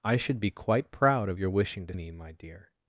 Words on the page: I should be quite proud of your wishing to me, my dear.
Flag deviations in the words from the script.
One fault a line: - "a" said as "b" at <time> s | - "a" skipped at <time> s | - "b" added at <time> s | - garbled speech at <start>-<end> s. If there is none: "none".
none